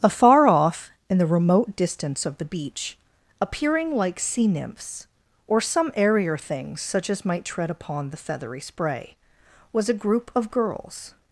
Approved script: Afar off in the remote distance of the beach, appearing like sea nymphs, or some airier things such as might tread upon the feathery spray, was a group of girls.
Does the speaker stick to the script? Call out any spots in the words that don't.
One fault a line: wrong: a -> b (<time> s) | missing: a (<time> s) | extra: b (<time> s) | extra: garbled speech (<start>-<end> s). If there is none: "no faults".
no faults